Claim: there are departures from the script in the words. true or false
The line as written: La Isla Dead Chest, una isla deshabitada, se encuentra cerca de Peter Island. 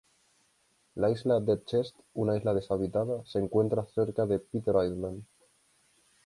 false